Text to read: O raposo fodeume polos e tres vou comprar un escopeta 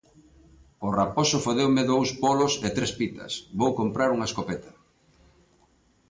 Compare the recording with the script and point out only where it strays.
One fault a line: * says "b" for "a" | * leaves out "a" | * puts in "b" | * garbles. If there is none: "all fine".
* puts in "dous"
* puts in "pitas"
* says "unha" for "un"